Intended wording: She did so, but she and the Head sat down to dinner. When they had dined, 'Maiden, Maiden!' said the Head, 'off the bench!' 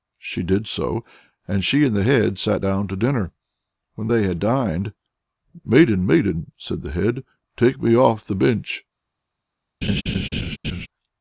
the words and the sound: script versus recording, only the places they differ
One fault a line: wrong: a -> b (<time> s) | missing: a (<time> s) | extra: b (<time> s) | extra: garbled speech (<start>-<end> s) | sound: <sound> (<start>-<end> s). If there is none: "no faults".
wrong: but -> and (1.5 s)
extra: take me (7.6 s)
sound: laugh (9.8-10.9 s)